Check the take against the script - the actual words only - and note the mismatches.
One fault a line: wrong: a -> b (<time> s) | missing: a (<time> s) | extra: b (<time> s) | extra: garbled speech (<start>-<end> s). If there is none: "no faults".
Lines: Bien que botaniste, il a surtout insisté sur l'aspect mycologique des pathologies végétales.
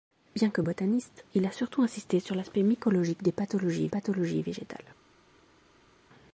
extra: pathologies (3.9 s)